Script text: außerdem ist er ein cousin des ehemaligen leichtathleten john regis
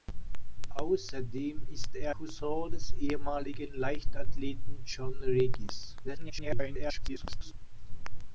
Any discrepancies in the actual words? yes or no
yes